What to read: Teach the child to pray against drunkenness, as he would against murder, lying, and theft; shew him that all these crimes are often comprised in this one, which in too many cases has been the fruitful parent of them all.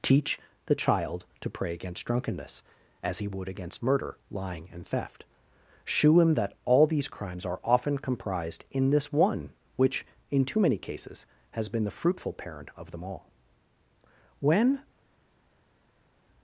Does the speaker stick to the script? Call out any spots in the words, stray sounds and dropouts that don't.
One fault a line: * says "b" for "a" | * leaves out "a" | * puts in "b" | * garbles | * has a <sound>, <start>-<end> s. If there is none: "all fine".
* puts in "When"